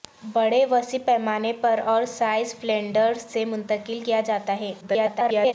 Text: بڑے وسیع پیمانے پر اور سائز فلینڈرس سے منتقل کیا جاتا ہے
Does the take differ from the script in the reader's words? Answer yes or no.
yes